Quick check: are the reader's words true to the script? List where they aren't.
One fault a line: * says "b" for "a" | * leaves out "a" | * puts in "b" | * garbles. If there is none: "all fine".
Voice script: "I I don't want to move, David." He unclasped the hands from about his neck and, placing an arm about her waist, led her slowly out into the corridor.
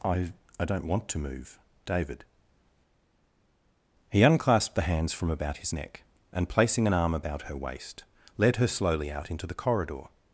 all fine